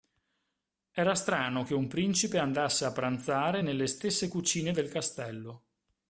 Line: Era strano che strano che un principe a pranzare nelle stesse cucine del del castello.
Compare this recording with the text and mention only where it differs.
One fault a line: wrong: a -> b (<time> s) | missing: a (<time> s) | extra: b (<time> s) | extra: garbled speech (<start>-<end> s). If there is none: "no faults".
missing: strano che (1.7 s)
extra: andasse (2.4 s)
missing: del (4.9 s)